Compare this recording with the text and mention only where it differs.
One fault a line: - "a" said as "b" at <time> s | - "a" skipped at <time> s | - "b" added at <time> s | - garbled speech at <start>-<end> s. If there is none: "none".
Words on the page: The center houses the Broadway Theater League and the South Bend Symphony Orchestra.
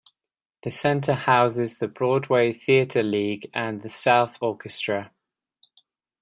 - "Bend Symphony" skipped at 4.4 s